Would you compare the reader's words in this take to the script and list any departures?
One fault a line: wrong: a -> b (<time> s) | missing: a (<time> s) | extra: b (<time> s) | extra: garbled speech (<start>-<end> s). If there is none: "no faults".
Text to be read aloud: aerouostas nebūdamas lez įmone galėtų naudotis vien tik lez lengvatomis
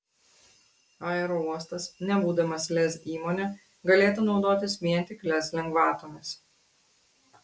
no faults